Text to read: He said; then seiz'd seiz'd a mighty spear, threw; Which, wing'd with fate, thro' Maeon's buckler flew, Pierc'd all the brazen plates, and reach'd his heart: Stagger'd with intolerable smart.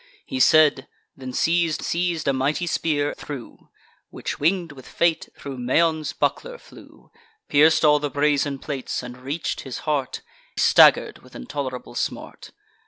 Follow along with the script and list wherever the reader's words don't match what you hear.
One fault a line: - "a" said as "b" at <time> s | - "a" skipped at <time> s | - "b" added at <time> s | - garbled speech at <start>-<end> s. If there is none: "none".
none